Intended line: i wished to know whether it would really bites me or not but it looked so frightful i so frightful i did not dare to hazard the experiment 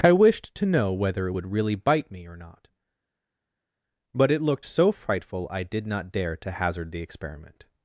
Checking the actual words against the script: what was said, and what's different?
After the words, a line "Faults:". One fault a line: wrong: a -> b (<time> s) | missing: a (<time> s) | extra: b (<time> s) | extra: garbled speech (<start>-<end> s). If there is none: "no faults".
i wished to know whether it would really bite me or not but it looked so frightful i did not dare to hazard the experiment
Faults:
wrong: bites -> bite (1.7 s)
missing: so frightful i (5.6 s)